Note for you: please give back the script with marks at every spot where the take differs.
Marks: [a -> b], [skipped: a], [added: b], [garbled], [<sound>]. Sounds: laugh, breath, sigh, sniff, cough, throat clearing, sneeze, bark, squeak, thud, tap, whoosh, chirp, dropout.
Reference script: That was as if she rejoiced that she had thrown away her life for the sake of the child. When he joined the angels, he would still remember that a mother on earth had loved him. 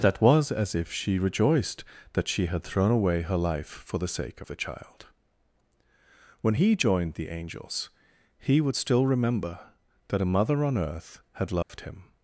That was as if she rejoiced that she had thrown away her life for the sake of the child. When he joined the angels, he would still remember that a mother on earth had loved [dropout] him.